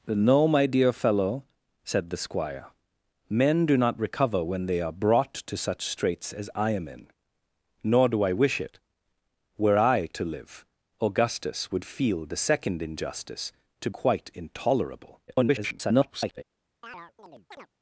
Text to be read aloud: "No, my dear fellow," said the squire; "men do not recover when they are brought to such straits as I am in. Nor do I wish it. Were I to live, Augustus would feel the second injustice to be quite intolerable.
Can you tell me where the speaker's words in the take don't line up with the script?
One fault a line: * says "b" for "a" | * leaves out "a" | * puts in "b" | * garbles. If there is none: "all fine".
* leaves out "be"
* garbles